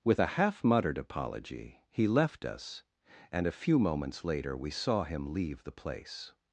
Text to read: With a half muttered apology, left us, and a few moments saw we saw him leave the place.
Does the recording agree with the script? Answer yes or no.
no